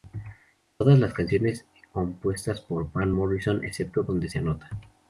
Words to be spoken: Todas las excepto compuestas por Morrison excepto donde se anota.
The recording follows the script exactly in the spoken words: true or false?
false